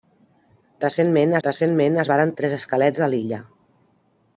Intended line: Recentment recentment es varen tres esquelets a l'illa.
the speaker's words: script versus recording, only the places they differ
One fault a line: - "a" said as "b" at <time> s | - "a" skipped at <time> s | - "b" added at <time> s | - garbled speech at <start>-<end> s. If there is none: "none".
none